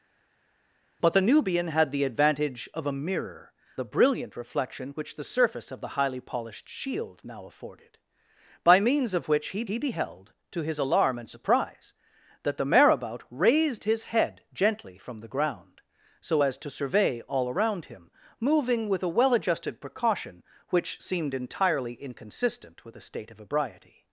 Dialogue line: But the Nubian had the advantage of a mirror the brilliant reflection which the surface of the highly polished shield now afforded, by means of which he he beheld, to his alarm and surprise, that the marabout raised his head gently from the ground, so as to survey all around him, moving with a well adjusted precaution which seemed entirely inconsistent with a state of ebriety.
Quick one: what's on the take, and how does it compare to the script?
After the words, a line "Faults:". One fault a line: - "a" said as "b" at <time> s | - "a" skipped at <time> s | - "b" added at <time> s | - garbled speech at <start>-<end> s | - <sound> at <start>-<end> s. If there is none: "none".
But the Nubian had the advantage of a mirror the brilliant reflection which the surface of the highly polished shield now afforded, by means of which he he beheld, to his alarm and surprise, that the marabout raised his head gently from the ground, so as to survey all around him, moving with a well adjusted precaution which seemed entirely inconsistent with a state of ebriety.
Faults:
none